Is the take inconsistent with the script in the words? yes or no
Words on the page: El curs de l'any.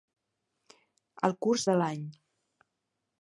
no